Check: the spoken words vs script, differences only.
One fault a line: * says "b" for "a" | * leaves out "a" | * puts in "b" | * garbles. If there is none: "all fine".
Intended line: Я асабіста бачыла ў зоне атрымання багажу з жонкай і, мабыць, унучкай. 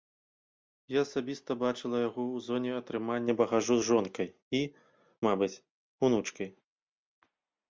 * puts in "яго"